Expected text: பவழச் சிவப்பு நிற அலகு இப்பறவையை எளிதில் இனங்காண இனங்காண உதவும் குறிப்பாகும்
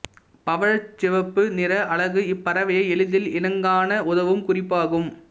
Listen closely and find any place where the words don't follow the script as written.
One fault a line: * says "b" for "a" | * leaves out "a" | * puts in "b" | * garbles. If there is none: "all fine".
* leaves out "இனங்காண"